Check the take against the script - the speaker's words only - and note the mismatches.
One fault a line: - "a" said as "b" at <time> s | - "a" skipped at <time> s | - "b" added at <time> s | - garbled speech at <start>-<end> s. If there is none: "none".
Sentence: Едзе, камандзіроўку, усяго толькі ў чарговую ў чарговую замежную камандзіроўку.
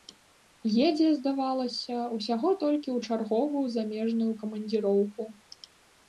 - "камандзіроўку" said as "здавалася" at 1.1 s
- "ў чарговую" skipped at 3.6 s